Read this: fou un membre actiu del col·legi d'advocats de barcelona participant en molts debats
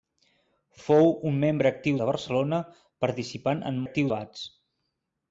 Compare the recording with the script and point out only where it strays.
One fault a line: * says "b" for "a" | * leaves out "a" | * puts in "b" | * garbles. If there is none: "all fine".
* leaves out "del col·legi d'advocats"
* says "actiu" for "molts"